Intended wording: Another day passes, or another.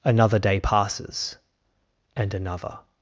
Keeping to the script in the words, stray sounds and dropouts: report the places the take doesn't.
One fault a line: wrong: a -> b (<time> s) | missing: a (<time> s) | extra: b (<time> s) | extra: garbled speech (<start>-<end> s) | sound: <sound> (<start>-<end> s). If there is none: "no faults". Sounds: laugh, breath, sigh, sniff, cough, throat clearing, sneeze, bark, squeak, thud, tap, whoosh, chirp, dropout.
wrong: or -> and (2.2 s)